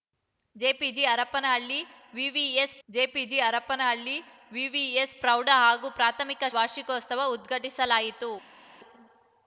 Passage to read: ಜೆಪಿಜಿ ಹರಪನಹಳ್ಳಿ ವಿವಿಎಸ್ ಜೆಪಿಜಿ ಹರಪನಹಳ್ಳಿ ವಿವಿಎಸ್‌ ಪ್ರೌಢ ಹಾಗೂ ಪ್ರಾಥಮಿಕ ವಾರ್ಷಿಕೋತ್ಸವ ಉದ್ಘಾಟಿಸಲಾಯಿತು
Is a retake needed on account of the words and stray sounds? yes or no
no